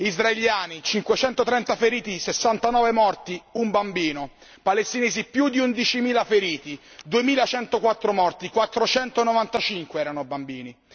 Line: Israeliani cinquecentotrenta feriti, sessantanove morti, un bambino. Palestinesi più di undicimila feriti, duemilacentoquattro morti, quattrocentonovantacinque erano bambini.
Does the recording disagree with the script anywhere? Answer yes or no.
no